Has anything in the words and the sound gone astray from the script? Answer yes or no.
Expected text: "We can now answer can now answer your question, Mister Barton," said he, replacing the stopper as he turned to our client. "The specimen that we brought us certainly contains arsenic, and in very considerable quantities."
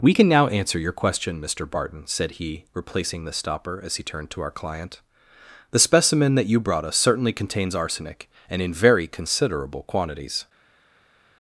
yes